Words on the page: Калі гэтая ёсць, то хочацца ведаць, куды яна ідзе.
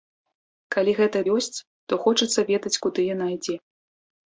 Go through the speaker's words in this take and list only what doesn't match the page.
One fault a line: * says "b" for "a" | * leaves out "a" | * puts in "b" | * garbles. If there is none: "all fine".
all fine